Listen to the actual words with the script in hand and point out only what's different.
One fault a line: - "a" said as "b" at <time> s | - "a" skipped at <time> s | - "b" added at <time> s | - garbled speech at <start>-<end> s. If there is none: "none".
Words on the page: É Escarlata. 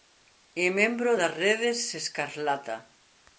- "membro das Redes" added at 0.8 s